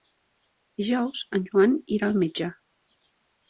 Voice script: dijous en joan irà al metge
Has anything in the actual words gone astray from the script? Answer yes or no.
no